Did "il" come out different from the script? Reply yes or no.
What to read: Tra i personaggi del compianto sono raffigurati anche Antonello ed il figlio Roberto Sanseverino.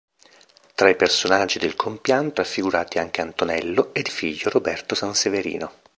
yes